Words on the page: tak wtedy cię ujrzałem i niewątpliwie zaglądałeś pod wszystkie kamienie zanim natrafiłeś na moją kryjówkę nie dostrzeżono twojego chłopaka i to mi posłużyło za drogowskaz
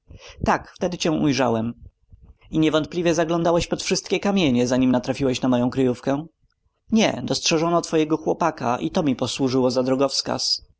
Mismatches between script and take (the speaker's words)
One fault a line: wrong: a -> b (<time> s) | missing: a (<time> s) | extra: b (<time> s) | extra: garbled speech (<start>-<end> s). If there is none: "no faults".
no faults